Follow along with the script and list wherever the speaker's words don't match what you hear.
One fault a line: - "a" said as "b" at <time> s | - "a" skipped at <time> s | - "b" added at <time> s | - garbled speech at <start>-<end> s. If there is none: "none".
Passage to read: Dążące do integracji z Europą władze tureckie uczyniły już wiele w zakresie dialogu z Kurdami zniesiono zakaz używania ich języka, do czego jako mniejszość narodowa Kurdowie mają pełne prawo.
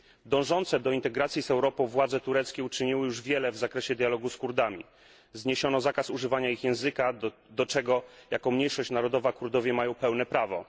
none